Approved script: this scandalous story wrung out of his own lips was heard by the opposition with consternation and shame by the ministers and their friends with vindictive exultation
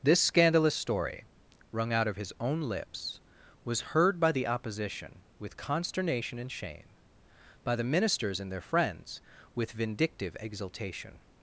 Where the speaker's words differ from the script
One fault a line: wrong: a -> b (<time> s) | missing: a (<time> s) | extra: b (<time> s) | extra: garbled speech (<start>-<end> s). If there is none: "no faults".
no faults